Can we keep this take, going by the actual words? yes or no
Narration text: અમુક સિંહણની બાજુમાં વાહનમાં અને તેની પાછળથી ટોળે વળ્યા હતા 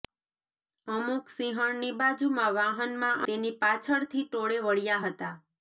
no